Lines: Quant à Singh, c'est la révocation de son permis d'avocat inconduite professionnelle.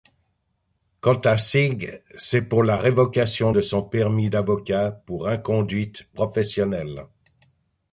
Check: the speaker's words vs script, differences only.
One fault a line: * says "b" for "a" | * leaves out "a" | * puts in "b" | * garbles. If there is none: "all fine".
* puts in "pour"
* puts in "pour"